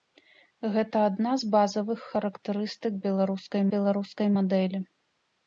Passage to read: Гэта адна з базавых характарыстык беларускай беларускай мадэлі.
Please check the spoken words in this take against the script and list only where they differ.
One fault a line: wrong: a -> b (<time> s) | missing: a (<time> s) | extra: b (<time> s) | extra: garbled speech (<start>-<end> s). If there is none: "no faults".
no faults